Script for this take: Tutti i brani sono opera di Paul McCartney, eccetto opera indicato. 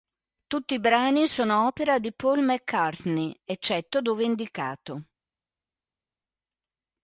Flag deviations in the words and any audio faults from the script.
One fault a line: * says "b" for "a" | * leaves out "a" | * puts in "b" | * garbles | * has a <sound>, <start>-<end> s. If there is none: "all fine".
* says "dove" for "opera"